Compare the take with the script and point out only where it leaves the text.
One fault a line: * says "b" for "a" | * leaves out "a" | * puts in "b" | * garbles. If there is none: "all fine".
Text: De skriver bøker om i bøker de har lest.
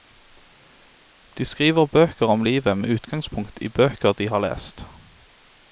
* puts in "livet med utgangspunkt"